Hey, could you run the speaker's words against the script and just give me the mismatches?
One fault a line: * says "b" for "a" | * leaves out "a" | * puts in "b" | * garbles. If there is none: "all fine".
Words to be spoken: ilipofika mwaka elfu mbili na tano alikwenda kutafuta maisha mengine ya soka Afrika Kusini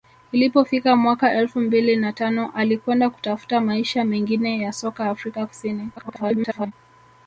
* garbles